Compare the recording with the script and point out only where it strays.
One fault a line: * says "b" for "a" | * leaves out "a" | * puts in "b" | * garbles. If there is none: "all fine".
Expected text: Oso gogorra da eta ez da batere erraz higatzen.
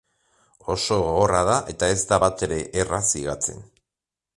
all fine